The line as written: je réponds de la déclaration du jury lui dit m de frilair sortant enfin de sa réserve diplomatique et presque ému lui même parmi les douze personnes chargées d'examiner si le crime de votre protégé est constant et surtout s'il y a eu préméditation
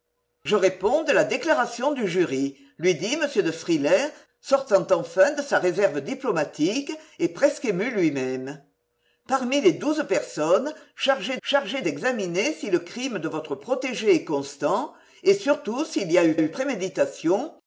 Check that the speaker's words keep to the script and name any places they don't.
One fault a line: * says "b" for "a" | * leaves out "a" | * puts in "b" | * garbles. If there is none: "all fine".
* puts in "chargées"
* puts in "eu"